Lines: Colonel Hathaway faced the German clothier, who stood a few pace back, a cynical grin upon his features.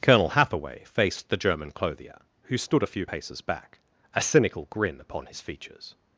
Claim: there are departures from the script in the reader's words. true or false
true